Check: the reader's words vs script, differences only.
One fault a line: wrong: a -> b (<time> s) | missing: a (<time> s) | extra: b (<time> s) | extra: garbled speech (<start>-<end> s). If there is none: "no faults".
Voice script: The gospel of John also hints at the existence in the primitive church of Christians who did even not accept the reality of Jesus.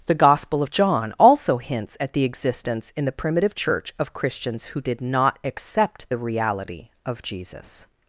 missing: even (5.0 s)